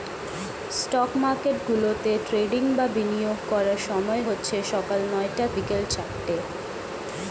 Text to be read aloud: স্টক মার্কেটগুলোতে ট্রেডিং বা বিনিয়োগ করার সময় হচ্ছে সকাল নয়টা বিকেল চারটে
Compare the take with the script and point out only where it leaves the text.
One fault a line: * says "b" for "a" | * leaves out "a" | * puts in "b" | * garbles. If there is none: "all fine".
all fine